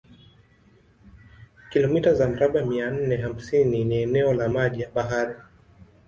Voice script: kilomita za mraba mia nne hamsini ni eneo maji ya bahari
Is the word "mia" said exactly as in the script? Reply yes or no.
yes